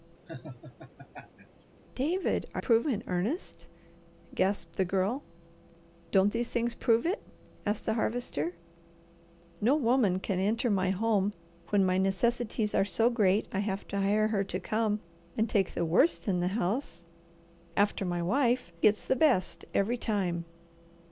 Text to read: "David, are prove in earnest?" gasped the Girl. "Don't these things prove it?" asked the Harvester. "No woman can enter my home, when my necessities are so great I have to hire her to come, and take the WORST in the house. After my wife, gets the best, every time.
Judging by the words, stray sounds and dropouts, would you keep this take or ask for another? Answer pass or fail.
fail